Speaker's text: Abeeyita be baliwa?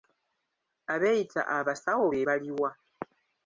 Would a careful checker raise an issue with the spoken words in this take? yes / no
yes